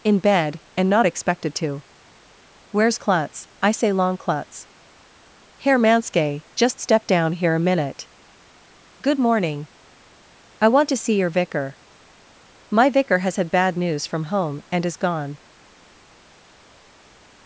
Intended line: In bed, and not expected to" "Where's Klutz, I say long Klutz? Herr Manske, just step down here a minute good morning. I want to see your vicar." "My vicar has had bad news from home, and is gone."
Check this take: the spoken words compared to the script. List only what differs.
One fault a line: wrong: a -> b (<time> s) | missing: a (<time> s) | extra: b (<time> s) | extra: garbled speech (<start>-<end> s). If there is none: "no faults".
no faults